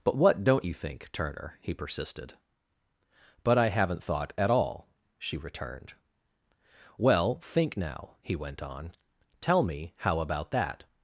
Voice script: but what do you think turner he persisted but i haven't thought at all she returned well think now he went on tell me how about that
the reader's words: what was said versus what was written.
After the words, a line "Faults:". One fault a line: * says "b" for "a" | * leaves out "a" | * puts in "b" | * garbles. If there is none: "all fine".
but what don't you think turner he persisted but i haven't thought at all she returned well think now he went on tell me how about that
Faults:
* says "don't" for "do"